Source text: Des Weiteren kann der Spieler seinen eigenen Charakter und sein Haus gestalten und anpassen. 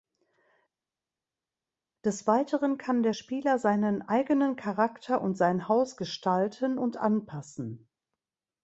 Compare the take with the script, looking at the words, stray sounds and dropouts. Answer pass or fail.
pass